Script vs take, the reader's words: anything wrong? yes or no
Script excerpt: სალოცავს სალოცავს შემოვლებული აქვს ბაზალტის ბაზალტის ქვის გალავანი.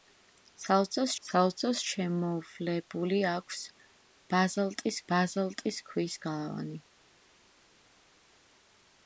no